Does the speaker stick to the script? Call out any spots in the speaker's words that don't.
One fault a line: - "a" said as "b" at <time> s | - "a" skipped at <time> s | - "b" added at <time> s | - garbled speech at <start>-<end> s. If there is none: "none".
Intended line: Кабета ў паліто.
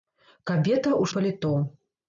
none